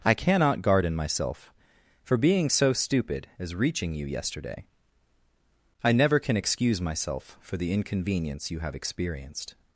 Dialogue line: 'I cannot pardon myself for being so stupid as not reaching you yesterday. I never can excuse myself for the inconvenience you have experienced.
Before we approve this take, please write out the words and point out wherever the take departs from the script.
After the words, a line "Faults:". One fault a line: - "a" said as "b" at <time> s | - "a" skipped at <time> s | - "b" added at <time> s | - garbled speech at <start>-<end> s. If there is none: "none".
'I cannot garden myself for being so stupid as reaching you yesterday. I never can excuse myself for the inconvenience you have experienced.
Faults:
- "pardon" said as "garden" at 0.6 s
- "not" skipped at 3.5 s